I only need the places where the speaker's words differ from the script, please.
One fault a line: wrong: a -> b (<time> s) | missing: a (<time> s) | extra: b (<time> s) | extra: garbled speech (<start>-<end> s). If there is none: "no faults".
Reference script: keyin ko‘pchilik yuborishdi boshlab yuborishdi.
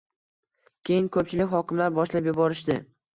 wrong: yuborishdi -> hokimlar (1.5 s)